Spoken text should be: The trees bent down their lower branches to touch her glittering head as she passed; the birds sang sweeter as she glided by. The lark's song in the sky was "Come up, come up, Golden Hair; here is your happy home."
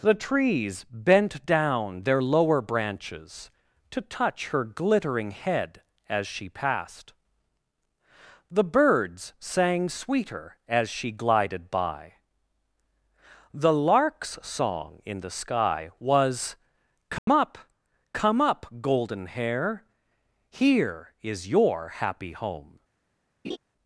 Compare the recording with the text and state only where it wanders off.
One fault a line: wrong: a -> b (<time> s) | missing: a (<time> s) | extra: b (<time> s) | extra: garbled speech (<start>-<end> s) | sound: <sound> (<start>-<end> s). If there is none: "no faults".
sound: dropout (17.2-17.3 s)
sound: laugh (23.4-23.6 s)